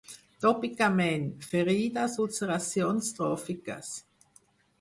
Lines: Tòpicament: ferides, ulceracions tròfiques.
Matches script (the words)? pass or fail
pass